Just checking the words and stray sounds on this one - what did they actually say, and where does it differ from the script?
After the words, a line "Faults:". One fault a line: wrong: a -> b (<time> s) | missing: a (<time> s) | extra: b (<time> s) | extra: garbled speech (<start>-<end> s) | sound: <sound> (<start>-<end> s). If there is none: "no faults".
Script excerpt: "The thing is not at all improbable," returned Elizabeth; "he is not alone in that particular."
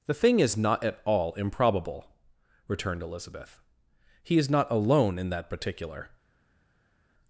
"The thing is not at all improbable," returned Elizabeth; "he is not alone in that particular."
Faults:
no faults